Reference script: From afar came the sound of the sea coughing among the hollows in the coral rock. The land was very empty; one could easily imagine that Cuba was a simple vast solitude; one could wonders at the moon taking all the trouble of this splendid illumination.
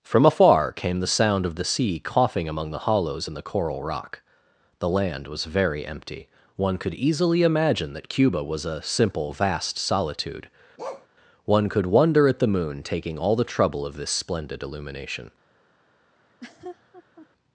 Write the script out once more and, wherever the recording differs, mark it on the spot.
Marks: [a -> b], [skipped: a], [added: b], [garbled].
From afar came the sound of the sea coughing among the hollows in the coral rock. The land was very empty; one could easily imagine that Cuba was a simple vast solitude; one could [wonders -> wonder] at the moon taking all the trouble of this splendid illumination.